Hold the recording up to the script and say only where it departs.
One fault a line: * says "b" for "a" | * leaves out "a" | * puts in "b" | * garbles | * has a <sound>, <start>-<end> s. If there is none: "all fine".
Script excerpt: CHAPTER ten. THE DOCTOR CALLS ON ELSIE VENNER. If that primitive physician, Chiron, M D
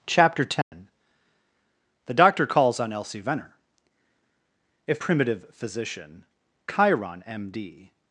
* has a dropout, 0.6-0.7 s
* leaves out "that"